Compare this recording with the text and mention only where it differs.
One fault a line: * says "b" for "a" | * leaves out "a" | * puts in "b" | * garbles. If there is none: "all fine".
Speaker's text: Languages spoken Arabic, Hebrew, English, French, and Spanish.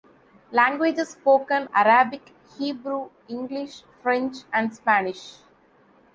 all fine